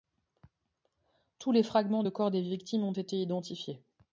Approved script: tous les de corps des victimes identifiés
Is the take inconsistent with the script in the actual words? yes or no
yes